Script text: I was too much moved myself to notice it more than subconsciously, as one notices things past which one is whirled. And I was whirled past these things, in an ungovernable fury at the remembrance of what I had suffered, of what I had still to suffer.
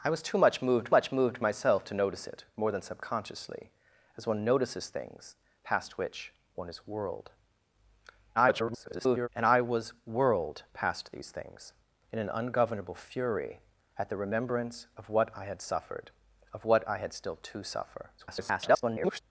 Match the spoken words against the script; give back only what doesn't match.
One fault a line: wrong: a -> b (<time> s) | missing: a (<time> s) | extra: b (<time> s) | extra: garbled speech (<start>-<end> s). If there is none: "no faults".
extra: much moved (0.9 s)
extra: garbled speech (8.3-9.3 s)
extra: garbled speech (18.2-19.2 s)